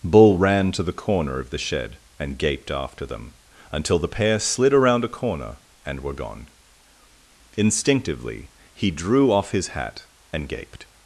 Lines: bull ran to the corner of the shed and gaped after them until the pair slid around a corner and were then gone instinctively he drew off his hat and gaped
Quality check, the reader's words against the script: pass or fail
fail